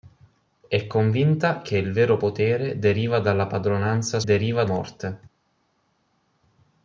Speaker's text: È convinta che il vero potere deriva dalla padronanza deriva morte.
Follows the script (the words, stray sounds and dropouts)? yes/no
yes